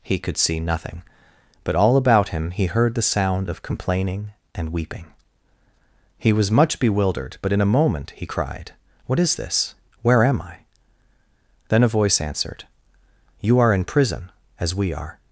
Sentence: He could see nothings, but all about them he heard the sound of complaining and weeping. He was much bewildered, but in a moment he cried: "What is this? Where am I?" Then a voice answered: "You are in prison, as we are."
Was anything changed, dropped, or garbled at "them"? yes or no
yes